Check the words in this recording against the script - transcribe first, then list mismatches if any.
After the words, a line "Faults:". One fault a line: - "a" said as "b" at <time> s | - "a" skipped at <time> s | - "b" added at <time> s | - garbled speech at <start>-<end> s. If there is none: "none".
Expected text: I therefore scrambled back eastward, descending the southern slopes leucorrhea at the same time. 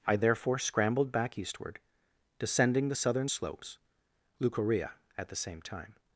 I therefore scrambled back eastward, descending the southern slopes leucorrhea at the same time.
Faults:
none